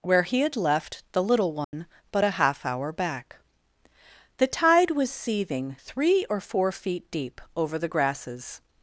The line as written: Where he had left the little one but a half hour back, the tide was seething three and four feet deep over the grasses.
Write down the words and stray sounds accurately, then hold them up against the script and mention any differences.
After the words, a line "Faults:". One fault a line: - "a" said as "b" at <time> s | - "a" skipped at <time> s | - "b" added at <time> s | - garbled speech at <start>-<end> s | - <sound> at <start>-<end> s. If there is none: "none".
Where he had left the little one but a half hour back, the tide was seething three or four feet deep over the grasses.
Faults:
- dropout at 1.6-1.7 s
- "and" said as "or" at 6.3 s